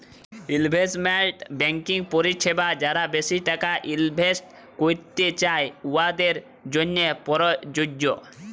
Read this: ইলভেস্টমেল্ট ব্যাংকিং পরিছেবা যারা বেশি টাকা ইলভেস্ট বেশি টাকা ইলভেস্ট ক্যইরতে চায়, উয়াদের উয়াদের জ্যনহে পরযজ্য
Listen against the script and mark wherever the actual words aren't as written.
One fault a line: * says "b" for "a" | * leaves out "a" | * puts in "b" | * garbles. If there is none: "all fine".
* leaves out "বেশি টাকা ইলভেস্ট"
* leaves out "উয়াদের"